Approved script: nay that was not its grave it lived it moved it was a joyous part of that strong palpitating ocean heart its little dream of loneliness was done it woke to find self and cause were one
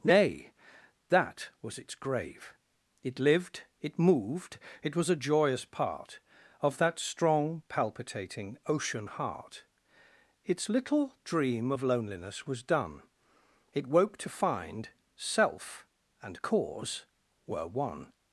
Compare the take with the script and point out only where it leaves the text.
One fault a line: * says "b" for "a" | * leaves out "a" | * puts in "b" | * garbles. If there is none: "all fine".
* leaves out "not"